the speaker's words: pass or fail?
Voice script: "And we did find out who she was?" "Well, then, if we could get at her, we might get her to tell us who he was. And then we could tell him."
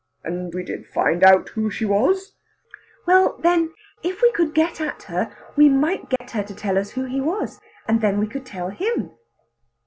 pass